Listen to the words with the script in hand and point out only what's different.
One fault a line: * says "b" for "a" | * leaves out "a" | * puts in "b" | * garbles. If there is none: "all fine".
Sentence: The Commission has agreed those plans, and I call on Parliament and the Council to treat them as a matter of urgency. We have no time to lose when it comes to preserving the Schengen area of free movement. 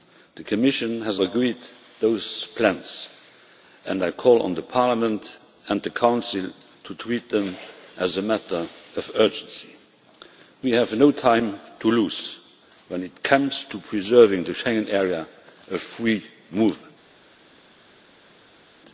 all fine